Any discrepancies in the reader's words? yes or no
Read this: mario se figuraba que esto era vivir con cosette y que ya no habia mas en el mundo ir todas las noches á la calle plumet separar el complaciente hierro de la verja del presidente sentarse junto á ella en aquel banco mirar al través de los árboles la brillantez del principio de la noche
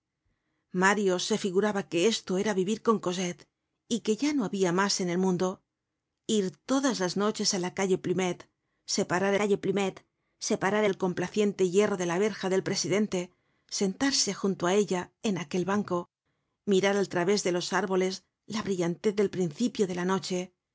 yes